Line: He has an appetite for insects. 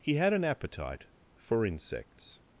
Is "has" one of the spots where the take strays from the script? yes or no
yes